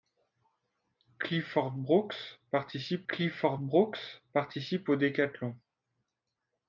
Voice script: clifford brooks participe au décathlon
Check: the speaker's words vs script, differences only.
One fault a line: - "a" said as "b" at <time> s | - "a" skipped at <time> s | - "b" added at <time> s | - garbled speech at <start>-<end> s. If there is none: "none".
- "clifford brooks participe" added at 3.1 s